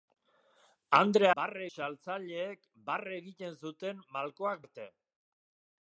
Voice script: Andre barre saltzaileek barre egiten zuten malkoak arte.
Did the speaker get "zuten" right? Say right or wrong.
right